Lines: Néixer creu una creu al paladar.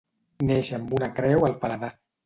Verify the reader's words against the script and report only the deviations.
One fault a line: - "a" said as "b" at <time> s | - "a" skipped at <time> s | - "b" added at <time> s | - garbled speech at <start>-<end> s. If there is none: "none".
- "creu" said as "amb" at 0.8 s